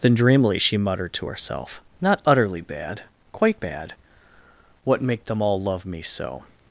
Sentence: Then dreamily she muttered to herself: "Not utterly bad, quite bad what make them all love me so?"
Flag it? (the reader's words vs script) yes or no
no